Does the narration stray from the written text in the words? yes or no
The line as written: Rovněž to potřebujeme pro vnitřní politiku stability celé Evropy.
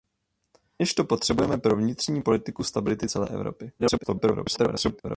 yes